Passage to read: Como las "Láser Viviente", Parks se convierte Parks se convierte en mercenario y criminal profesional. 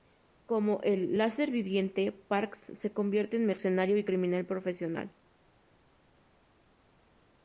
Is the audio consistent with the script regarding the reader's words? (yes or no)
no